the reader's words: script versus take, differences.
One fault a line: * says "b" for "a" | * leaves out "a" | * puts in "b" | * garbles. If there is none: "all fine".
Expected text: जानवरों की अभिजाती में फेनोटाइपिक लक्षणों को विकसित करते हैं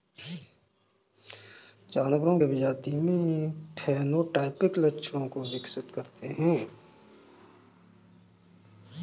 * leaves out "की"